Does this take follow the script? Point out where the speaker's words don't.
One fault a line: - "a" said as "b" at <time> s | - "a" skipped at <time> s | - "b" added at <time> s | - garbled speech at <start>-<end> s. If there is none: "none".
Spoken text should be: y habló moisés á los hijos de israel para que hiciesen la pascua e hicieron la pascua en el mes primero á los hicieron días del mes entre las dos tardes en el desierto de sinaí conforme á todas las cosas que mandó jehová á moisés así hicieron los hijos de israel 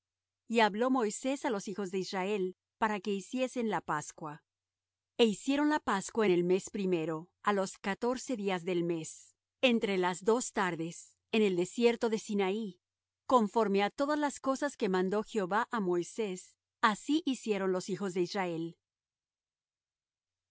- "hicieron" said as "catorce" at 7.8 s